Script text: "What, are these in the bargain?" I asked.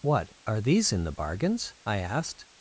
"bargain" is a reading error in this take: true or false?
true